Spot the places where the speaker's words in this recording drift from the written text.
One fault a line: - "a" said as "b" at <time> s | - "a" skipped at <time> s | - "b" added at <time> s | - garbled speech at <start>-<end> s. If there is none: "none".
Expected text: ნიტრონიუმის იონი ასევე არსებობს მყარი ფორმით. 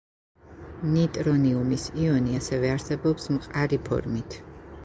none